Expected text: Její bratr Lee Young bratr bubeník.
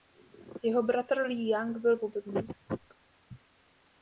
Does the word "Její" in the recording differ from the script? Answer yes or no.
yes